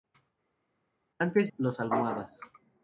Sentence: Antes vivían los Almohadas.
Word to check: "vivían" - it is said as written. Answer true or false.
false